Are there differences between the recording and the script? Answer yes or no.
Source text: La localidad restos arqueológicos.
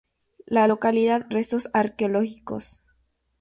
no